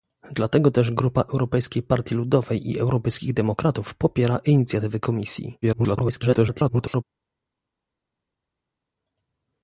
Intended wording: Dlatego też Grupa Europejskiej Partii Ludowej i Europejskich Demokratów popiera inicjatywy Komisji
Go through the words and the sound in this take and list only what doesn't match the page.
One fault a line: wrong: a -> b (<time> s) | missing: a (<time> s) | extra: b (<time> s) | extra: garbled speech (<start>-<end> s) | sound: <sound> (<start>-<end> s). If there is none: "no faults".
extra: garbled speech (5.6-7.0 s)